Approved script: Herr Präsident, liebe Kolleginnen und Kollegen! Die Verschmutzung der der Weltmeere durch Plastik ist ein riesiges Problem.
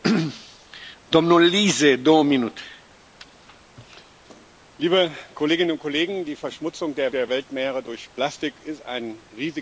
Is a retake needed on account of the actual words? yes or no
no